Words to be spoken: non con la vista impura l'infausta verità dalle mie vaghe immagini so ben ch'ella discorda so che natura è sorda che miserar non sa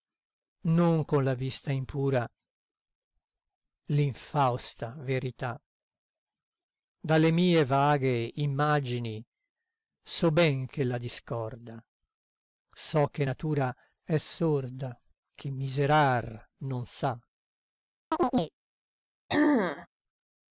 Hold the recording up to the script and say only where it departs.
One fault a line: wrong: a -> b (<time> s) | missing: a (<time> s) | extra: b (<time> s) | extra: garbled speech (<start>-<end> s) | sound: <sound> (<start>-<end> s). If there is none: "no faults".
sound: chirp (18.1-18.5 s)
sound: throat clearing (19.3-19.9 s)